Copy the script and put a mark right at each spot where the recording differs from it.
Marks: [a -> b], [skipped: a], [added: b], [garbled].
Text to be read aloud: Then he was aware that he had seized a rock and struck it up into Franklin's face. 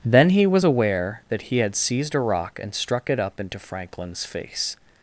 Then he was aware that he had seized a rock and struck it up into Franklin's face.